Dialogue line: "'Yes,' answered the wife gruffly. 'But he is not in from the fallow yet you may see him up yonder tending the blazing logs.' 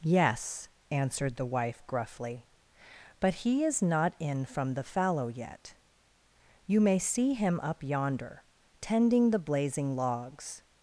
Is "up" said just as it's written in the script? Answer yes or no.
yes